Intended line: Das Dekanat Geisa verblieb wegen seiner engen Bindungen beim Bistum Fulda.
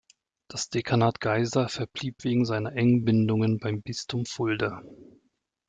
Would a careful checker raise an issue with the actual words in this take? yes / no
no